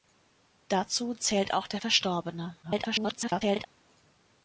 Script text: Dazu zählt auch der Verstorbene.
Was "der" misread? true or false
false